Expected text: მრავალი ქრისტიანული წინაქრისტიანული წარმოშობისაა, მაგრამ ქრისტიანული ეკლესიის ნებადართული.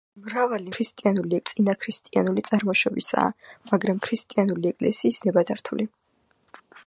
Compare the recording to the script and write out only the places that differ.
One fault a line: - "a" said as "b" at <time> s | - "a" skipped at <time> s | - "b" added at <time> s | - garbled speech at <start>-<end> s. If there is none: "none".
none